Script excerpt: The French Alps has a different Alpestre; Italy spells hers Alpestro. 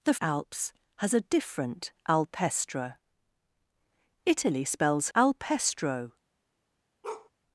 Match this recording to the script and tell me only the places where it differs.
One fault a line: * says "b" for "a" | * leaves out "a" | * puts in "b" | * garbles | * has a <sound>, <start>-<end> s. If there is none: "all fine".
* leaves out "French"
* leaves out "hers"
* has a bark, 7.0-7.3 s